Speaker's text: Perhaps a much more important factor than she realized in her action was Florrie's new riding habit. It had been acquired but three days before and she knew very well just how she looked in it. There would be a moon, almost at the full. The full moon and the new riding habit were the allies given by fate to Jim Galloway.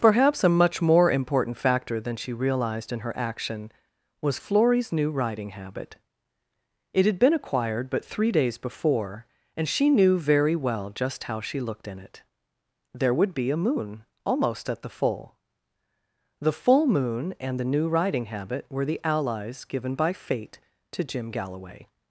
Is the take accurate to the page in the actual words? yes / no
yes